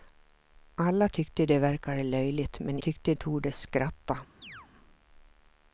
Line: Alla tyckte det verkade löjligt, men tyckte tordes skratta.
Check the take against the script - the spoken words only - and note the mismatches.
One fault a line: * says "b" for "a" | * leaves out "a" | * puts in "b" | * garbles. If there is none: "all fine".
all fine